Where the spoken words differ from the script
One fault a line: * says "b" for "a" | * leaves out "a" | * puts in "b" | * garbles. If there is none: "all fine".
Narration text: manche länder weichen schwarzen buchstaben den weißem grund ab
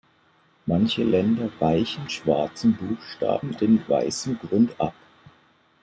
all fine